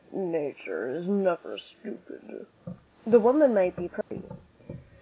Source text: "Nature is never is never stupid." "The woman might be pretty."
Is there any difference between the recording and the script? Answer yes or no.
yes